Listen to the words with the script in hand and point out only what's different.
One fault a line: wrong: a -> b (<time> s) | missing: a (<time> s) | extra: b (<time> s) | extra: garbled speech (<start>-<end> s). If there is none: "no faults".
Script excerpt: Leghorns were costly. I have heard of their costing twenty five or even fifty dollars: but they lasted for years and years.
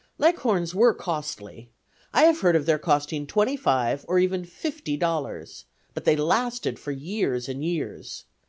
no faults